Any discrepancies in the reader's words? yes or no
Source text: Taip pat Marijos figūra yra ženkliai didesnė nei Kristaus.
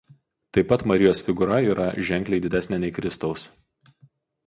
no